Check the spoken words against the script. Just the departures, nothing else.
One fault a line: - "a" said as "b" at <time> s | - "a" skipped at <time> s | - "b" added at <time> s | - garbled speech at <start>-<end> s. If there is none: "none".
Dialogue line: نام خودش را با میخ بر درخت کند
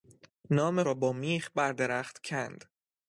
- "خودش" skipped at 0.8 s